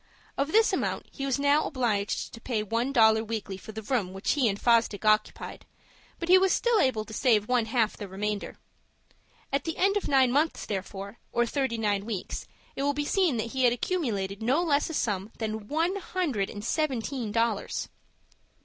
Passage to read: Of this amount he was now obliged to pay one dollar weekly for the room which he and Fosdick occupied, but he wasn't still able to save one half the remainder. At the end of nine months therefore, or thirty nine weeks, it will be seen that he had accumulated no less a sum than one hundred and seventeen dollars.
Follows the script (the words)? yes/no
no